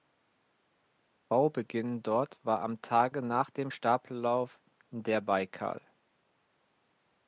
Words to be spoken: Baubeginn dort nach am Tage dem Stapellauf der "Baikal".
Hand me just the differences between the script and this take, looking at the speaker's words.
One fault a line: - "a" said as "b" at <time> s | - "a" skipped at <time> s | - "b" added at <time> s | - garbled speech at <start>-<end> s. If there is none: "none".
- "nach" said as "war" at 2.4 s
- "nach" added at 3.2 s